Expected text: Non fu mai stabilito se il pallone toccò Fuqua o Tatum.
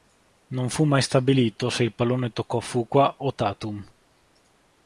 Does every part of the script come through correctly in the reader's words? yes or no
yes